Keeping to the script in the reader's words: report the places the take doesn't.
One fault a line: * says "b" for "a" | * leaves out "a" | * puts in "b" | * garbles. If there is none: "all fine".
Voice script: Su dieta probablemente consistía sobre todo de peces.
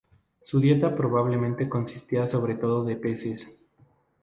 all fine